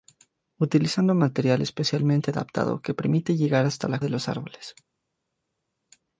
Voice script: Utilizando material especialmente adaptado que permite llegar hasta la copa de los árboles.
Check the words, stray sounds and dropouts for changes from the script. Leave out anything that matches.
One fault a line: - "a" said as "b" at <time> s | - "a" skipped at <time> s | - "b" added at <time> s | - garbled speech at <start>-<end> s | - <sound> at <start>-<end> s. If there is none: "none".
- "copa" skipped at 4.0 s